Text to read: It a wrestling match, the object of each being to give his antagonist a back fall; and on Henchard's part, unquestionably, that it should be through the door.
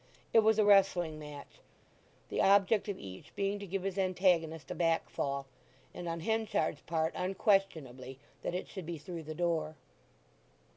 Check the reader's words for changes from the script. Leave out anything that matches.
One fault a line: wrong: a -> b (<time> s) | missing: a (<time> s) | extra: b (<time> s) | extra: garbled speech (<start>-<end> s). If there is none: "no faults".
extra: was (0.4 s)